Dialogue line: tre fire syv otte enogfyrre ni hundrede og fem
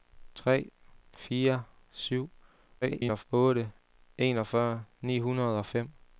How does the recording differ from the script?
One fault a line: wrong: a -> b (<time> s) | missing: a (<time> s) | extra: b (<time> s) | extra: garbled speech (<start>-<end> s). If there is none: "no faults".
extra: garbled speech (2.8-3.2 s)